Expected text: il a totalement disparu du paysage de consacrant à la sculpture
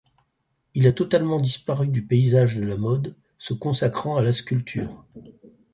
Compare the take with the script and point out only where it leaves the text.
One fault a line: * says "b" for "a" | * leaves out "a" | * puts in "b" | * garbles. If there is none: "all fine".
* puts in "la mode se"